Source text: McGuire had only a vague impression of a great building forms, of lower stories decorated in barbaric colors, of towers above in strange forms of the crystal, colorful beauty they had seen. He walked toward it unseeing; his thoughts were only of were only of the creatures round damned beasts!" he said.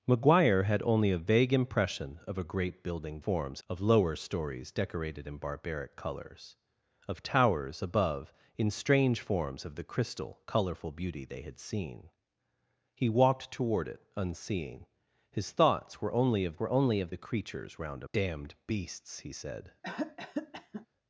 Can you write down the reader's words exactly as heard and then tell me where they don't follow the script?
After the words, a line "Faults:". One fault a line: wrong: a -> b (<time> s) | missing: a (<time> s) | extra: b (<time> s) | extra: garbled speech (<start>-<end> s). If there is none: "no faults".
McGuire had only a vague impression of a great building forms, of lower stories decorated in barbaric colors, of towers above in strange forms of the crystal, colorful beauty they had seen. He walked toward it unseeing; his thoughts were only of were only of the creatures round damned beasts!" he said.
Faults:
no faults